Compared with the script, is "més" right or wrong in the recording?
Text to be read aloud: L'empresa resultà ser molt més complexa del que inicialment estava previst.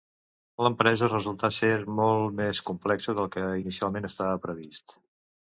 right